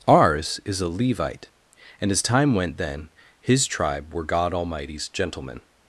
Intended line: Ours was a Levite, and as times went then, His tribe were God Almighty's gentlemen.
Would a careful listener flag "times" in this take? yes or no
yes